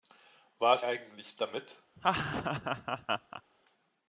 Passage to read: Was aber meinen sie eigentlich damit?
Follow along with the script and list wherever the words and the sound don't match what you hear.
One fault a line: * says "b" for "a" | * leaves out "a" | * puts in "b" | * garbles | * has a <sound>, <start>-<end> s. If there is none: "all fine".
* leaves out "aber meinen sie"
* has a laugh, 2.0-3.4 s